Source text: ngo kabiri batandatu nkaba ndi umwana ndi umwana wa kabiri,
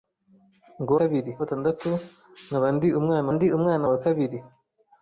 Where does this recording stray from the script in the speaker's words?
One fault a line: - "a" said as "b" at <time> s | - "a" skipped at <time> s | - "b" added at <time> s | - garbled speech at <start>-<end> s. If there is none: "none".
none